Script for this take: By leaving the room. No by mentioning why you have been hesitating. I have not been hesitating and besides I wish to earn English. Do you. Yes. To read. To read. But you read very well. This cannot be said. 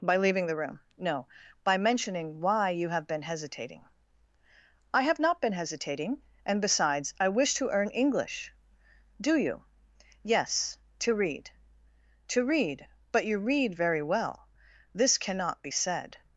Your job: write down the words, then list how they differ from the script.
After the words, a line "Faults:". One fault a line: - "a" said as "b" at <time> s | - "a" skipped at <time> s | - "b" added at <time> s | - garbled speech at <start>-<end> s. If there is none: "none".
By leaving the room. No by mentioning why you have been hesitating. I have not been hesitating and besides I wish to earn English. Do you. Yes. To read. To read. But you read very well. This cannot be said.
Faults:
none